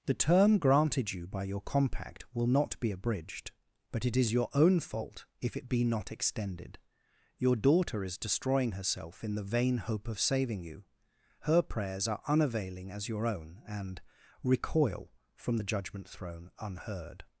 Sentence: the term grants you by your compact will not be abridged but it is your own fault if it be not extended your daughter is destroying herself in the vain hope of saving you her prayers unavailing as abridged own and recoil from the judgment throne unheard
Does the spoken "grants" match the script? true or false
false